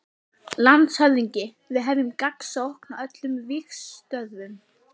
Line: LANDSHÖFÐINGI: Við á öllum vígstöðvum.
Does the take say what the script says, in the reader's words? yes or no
no